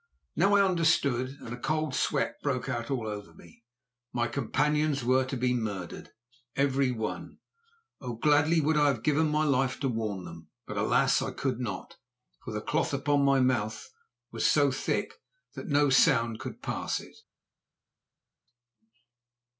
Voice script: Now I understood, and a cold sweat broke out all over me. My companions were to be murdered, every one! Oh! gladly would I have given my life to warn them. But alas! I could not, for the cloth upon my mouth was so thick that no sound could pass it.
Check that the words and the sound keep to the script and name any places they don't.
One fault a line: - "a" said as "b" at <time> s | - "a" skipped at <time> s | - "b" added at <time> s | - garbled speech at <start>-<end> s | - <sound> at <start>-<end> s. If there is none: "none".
none